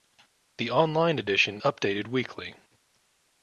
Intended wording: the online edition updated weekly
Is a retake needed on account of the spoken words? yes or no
no